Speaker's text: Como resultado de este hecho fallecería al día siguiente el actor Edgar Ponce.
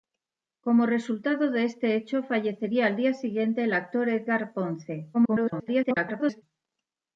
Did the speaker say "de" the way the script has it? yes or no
yes